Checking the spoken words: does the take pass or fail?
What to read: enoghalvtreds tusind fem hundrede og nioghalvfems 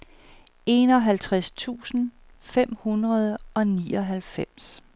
pass